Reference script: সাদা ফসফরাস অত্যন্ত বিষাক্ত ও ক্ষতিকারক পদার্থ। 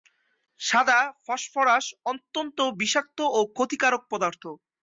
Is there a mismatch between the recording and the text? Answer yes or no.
no